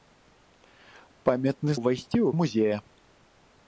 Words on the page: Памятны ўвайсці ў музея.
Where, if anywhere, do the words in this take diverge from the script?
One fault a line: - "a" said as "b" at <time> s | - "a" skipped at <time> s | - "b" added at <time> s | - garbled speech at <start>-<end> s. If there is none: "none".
none